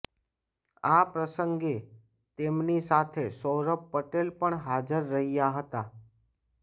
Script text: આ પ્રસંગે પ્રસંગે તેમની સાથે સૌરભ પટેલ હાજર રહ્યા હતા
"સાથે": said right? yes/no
yes